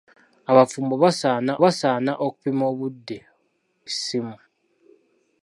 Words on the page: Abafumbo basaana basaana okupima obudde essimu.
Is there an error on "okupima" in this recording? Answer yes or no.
no